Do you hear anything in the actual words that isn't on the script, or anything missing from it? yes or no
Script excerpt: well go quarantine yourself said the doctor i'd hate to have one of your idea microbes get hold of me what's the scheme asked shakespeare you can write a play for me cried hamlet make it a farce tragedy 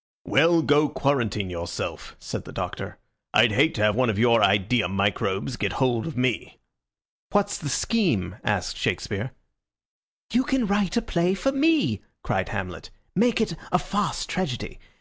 no